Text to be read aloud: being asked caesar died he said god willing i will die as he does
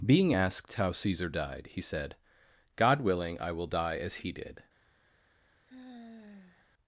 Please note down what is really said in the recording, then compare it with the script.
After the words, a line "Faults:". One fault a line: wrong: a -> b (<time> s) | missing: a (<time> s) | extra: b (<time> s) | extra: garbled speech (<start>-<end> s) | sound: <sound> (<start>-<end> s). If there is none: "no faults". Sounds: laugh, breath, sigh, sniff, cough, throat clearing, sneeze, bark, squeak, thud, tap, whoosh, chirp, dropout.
being asked how caesar died he said god willing i will die as he did
Faults:
extra: how (0.7 s)
wrong: does -> did (4.3 s)
sound: sigh (5.7-6.7 s)